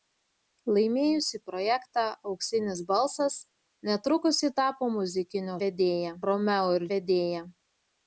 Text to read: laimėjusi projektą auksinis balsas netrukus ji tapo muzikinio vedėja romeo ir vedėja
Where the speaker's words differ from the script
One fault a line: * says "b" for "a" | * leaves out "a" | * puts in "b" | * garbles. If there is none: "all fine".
all fine